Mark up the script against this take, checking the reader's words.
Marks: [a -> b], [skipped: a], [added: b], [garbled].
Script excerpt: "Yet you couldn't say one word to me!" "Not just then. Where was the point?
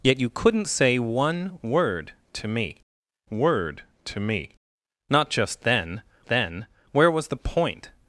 "Yet you couldn't say one word to me!" [added: word to me] "Not just then. [added: then] Where was the point?